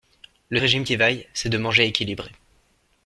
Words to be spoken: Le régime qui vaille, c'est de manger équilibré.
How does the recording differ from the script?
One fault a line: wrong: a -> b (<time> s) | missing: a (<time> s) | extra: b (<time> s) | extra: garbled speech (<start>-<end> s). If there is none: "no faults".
no faults